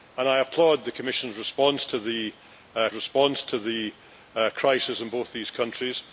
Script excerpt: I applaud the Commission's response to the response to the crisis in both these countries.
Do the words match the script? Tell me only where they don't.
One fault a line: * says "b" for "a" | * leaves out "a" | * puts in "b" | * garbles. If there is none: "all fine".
all fine